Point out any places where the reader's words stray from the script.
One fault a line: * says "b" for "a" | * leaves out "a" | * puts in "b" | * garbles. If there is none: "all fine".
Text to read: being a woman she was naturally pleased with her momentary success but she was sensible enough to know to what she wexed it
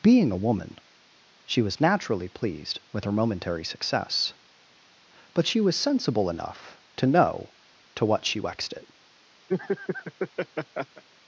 all fine